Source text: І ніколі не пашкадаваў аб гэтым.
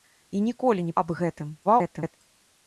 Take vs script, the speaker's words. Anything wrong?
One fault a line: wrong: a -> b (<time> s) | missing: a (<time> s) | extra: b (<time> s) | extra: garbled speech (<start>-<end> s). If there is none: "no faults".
missing: пашкадаваў (0.9 s)
extra: garbled speech (1.6-2.2 s)